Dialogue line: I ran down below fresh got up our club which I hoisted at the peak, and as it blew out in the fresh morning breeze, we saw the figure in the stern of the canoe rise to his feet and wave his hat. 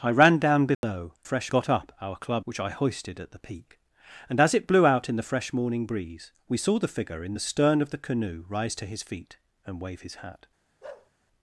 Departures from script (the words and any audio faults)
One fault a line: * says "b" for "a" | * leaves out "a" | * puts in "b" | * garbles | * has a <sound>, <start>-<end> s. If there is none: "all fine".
* has a dropout, 0.7-0.8 s
* has a bark, 10.8-11.1 s